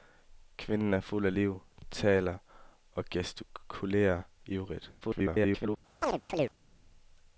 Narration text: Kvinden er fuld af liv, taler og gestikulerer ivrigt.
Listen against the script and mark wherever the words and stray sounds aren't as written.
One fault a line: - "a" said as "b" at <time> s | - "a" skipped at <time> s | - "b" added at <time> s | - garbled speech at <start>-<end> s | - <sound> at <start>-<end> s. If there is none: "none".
- garbled speech at 5.0-5.8 s
- chirp at 6.0-6.5 s